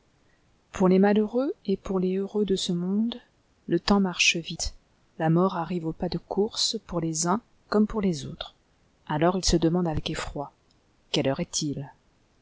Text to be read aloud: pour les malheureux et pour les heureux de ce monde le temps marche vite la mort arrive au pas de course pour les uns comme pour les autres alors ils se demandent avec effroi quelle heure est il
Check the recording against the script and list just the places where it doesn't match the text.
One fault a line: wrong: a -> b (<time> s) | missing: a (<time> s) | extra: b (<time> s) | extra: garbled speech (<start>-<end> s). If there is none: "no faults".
no faults